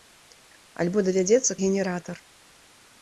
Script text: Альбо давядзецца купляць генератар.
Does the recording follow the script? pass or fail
fail